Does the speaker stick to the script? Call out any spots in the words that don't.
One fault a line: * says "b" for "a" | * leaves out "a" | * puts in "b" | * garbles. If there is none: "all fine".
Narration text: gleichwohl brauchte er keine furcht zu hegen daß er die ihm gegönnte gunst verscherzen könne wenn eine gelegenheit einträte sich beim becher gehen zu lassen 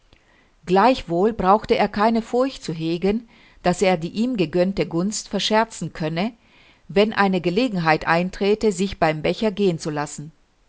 all fine